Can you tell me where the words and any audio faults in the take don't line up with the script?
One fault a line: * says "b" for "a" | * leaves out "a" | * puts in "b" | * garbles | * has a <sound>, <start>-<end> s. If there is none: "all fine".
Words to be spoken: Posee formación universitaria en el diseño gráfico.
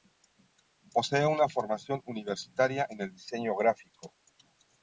* puts in "una"